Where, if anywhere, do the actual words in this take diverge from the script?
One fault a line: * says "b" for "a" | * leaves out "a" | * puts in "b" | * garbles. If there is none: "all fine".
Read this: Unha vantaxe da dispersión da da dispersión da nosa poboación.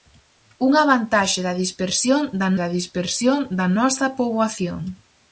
all fine